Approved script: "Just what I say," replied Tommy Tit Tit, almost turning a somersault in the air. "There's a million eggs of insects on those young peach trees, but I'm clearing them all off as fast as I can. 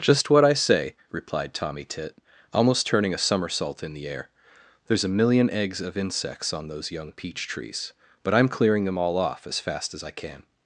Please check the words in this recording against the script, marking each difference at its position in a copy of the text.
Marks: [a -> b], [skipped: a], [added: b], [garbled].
"Just what I say," replied Tommy Tit [skipped: Tit,] almost turning a somersault in the air. "There's a million eggs of insects on those young peach trees, but I'm clearing them all off as fast as I can.